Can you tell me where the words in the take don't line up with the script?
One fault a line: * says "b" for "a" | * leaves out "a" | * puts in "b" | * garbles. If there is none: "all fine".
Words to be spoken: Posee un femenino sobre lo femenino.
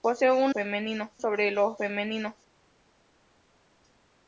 all fine